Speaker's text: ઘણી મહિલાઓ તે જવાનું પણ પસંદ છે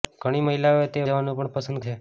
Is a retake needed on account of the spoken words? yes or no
no